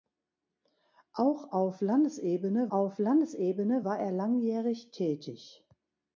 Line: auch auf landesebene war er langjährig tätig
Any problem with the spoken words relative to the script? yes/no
yes